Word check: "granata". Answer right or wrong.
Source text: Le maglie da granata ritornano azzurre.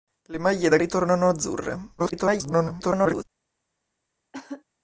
wrong